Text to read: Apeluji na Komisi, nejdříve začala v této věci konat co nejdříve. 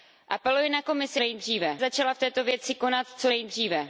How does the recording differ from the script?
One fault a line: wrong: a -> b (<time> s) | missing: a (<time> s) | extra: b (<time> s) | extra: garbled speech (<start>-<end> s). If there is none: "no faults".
no faults